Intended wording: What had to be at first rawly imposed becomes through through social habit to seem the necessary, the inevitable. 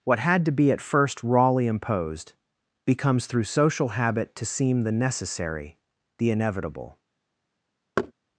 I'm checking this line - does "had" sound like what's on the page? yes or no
yes